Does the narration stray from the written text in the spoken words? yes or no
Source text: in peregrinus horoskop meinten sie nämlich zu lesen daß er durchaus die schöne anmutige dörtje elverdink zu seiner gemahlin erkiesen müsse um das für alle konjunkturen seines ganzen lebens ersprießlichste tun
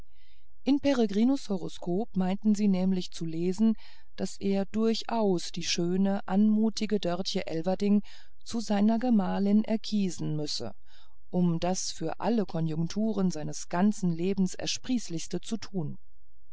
yes